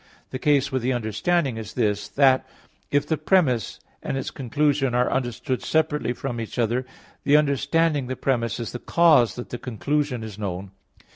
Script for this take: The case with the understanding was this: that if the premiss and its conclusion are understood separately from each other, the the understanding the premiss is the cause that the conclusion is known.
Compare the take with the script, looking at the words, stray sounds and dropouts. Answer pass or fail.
fail